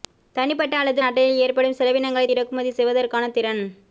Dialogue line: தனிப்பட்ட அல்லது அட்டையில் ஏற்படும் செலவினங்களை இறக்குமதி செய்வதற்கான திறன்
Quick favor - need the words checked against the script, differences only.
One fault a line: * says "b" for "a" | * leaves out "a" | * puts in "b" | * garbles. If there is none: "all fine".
all fine